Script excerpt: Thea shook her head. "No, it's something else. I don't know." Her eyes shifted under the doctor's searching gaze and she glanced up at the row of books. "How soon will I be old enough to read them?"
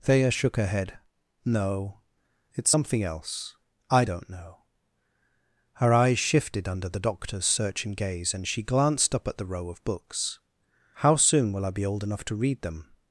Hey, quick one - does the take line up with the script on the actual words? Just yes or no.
yes